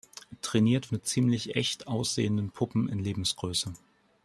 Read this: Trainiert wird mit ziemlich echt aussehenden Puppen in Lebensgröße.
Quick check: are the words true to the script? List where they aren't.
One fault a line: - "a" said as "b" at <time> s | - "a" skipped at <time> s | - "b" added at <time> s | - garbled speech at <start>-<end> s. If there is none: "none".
- "wird" skipped at 0.9 s